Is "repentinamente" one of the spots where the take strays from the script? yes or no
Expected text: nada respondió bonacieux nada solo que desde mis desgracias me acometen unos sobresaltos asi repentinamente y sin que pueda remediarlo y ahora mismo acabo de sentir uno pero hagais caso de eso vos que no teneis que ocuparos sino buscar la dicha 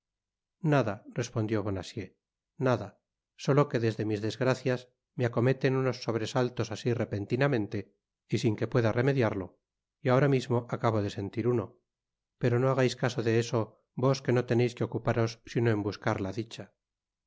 no